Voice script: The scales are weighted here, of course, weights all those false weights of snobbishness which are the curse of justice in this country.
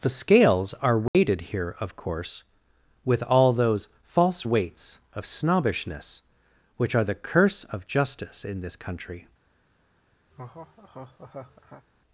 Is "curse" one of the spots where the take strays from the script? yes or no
no